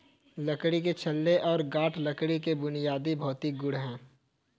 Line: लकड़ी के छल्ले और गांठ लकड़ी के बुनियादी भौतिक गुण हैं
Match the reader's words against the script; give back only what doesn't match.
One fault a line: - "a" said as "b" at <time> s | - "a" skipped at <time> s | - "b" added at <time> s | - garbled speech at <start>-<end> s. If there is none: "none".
none